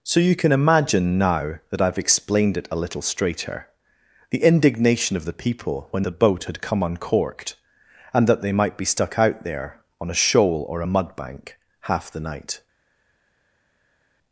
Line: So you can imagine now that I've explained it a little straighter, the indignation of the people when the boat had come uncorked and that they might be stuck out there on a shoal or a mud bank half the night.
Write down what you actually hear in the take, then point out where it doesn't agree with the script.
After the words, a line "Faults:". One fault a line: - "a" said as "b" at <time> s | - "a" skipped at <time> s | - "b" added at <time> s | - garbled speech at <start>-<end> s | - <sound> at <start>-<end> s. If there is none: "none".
So you can imagine now that I've explained it a little straighter, the indignation of the people when the boat had come uncorked and that they might be stuck out there on a shoal or a mud bank half the night.
Faults:
none